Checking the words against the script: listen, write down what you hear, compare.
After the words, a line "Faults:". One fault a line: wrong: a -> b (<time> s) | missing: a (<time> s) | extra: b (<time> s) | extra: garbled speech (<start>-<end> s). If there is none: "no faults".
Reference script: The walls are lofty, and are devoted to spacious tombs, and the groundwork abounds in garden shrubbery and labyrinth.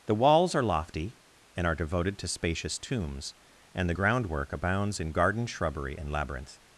The walls are lofty, and are devoted to spacious tombs, and the groundwork abounds in garden shrubbery and labyrinth.
Faults:
no faults